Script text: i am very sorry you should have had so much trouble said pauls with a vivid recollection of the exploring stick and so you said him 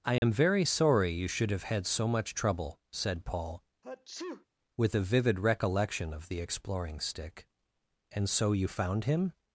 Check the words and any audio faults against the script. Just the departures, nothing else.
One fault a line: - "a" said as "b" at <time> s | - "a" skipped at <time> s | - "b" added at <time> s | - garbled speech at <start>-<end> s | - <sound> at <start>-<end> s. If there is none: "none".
- dropout at 0.2-0.2 s
- "pauls" said as "paul" at 3.3 s
- sneeze at 3.8-4.5 s
- "said" said as "found" at 8.7 s